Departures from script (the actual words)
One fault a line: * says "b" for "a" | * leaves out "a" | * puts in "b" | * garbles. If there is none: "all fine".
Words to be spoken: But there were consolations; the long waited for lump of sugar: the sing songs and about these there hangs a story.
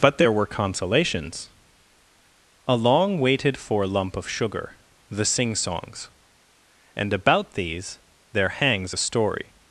* says "a" for "the"